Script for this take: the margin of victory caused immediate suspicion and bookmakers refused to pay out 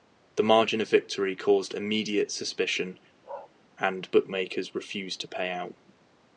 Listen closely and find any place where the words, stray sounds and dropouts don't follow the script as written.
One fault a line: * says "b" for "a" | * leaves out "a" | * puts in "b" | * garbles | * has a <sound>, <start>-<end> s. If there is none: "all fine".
* has a bark, 3.2-3.5 s